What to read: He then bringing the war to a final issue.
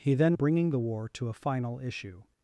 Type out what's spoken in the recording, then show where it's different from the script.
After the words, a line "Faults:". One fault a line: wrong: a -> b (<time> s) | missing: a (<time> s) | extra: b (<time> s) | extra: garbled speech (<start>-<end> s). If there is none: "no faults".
He then bringing the war to a final issue.
Faults:
no faults